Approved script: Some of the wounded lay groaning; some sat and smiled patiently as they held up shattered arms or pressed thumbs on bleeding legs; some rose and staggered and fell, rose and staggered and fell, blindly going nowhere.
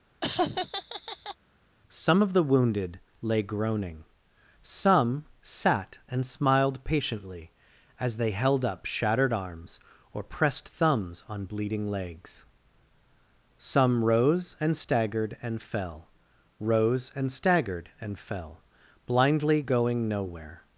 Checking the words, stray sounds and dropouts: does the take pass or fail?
fail